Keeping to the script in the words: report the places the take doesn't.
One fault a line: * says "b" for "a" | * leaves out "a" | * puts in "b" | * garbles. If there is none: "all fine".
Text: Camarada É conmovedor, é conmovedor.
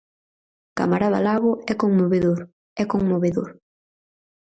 * puts in "Lago"